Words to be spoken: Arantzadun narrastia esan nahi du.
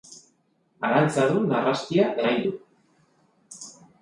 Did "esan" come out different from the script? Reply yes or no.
yes